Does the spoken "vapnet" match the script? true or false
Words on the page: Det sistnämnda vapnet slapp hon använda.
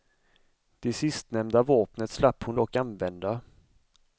true